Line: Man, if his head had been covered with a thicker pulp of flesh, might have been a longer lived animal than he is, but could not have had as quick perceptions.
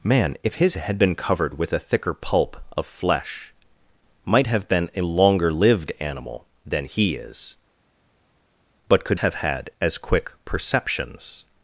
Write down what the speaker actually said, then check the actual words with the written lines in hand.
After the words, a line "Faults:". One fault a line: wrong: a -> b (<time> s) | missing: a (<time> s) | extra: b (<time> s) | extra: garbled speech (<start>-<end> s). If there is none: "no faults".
Man, if his had been covered with a thicker pulp of flesh, might have been a longer lived animal than he is, but could have had as quick perceptions.
Faults:
missing: head (0.8 s)
missing: not (9.2 s)